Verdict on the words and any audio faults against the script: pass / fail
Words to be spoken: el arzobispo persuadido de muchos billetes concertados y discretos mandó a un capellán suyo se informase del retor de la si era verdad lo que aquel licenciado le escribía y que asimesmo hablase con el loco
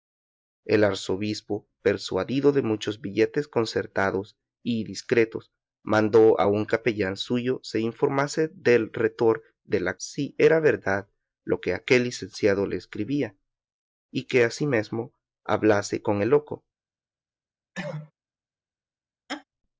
fail